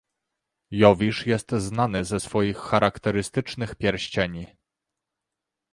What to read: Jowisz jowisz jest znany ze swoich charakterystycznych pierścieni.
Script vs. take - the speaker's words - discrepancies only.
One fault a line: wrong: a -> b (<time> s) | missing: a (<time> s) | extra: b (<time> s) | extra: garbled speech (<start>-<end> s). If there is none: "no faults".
missing: jowisz (1.3 s)